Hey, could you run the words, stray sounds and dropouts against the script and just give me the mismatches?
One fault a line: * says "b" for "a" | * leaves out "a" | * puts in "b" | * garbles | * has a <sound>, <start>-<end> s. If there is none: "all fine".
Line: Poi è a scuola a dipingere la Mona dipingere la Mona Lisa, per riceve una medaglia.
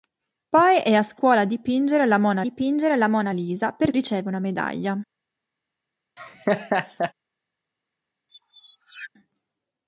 * has a laugh, 6.2-7.1 s
* has a squeak, 8.3-9.1 s